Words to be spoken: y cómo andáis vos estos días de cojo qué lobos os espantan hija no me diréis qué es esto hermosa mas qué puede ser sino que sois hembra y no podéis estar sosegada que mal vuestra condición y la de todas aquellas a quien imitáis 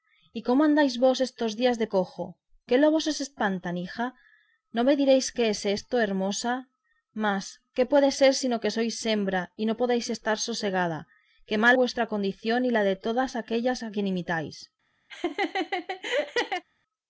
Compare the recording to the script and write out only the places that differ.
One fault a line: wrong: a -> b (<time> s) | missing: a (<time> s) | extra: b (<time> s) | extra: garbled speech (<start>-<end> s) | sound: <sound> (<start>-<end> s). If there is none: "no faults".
sound: laugh (15.1-16.6 s)